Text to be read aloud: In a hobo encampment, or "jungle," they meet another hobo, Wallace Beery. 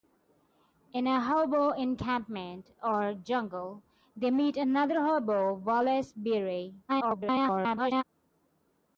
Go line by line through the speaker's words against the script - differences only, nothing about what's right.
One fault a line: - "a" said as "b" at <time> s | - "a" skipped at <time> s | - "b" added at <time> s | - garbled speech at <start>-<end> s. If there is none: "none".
- garbled speech at 6.9-8.0 s